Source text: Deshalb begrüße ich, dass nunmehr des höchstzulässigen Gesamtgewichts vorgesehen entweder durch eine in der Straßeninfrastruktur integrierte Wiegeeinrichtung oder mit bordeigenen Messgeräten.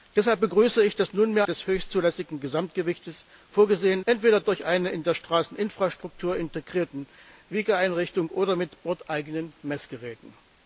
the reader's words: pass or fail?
pass